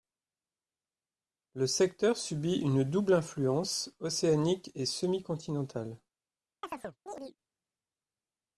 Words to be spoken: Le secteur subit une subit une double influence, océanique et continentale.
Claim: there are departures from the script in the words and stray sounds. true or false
true